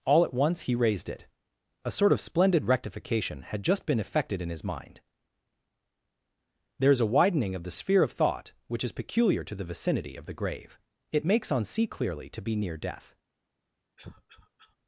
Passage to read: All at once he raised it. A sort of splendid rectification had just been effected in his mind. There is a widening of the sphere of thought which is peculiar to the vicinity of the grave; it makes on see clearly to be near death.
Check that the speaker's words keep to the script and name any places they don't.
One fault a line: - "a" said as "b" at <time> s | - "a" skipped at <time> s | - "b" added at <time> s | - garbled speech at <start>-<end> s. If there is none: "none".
none